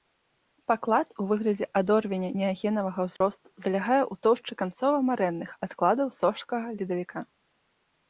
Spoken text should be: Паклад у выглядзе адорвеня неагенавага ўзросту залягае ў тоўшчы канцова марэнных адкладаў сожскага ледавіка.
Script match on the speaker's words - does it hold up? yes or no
yes